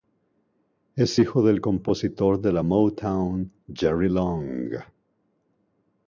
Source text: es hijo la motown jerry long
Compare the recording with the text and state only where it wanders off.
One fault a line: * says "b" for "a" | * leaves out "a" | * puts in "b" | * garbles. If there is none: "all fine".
* puts in "del compositor de"